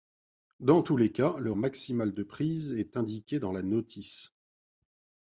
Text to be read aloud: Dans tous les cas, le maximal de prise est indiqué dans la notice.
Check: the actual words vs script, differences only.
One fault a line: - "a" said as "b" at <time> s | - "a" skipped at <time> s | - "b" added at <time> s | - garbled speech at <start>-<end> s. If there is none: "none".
none